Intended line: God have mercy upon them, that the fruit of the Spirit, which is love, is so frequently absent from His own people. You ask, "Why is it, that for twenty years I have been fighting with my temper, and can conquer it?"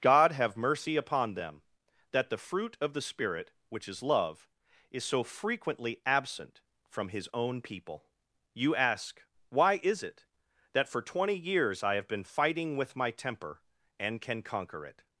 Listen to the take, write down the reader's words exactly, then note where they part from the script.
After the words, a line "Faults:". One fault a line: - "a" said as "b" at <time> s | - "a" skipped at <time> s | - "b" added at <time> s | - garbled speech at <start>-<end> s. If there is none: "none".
God have mercy upon them, that the fruit of the Spirit, which is love, is so frequently absent from His own people. You ask, "Why is it, that for twenty years I have been fighting with my temper, and can conquer it?"
Faults:
none